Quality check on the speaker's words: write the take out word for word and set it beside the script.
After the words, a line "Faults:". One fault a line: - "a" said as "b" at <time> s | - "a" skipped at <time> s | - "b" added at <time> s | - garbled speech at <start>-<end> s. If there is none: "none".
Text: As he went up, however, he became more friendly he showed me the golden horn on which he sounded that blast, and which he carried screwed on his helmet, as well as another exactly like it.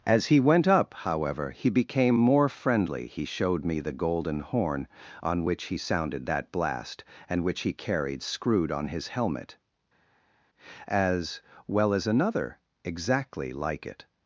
As he went up, however, he became more friendly he showed me the golden horn on which he sounded that blast, and which he carried screwed on his helmet, as well as another exactly like it.
Faults:
none